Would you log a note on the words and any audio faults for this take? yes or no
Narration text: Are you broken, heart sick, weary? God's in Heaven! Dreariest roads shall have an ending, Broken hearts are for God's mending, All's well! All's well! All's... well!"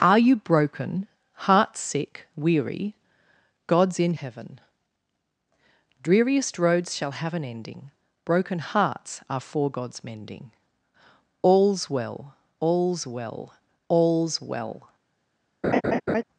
yes